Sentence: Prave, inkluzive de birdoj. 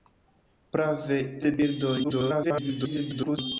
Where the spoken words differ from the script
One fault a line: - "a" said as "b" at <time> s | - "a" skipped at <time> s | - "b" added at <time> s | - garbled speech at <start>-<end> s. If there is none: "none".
- "inkluzive" skipped at 1.2 s
- garbled speech at 2.0-3.4 s